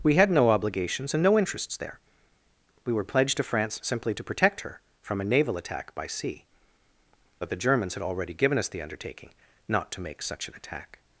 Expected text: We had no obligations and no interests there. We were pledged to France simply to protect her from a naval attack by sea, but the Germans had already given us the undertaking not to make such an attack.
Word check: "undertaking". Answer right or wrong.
right